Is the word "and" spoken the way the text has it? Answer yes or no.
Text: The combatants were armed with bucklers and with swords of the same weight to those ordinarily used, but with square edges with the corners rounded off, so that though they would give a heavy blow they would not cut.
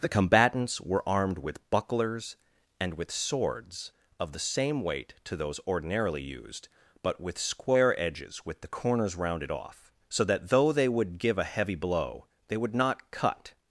yes